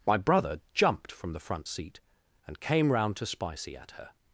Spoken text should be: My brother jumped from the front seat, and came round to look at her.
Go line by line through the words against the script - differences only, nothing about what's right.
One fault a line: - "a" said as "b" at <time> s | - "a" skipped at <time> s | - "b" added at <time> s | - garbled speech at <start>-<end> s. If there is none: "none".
- "look" said as "spicy" at 3.3 s